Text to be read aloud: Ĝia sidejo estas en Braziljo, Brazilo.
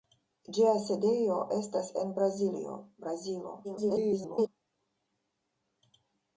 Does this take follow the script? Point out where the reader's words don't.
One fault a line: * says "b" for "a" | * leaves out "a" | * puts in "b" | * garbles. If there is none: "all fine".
* garbles